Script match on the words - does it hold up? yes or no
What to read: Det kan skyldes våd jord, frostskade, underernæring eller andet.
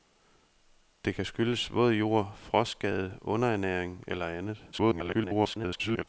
no